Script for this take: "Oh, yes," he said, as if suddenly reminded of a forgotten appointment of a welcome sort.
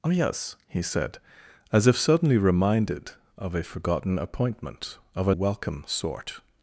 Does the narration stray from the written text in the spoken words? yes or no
no